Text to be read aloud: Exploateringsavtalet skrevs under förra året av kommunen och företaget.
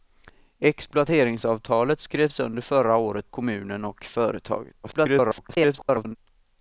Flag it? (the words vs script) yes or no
yes